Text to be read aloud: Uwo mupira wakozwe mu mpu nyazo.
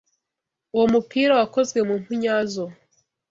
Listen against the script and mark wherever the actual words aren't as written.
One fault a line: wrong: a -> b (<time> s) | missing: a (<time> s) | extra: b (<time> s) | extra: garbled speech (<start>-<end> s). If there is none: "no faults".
no faults